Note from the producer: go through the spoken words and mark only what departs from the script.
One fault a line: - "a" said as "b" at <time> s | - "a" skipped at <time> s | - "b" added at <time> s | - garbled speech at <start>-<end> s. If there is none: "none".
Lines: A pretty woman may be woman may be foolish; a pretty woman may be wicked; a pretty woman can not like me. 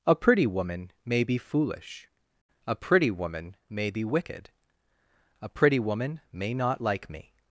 - "woman may be" skipped at 1.4 s
- "can" said as "may" at 6.3 s